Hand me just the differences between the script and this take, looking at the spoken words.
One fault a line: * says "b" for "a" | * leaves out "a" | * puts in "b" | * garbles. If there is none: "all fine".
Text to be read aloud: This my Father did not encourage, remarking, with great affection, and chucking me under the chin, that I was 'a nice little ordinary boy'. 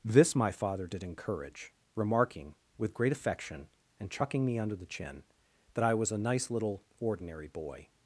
* leaves out "not"